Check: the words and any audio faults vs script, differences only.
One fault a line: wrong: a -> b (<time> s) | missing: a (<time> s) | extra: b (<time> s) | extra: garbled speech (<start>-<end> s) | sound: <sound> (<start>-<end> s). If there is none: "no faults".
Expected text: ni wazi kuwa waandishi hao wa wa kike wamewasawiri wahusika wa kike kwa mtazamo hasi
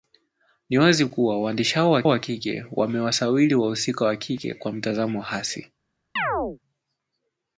sound: chirp (6.2-6.6 s)